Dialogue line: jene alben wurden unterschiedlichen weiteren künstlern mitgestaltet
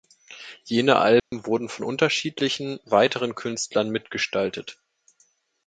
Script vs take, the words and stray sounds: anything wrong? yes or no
yes